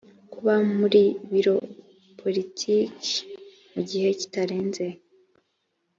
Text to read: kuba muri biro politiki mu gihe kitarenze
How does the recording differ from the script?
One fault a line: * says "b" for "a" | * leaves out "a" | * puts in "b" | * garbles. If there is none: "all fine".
all fine